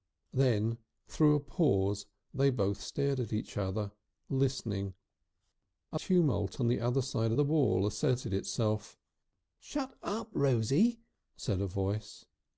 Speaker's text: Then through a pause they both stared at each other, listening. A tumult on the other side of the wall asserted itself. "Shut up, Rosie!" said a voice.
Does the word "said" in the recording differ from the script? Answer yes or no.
no